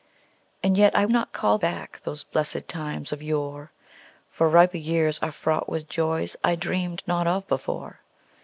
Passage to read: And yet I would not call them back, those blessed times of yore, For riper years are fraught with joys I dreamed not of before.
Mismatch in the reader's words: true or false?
true